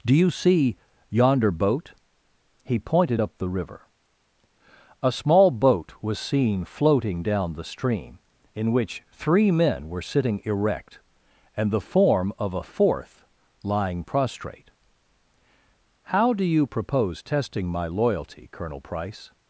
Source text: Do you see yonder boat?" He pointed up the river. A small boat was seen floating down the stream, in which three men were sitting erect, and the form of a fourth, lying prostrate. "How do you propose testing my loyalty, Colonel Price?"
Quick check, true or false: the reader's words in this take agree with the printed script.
true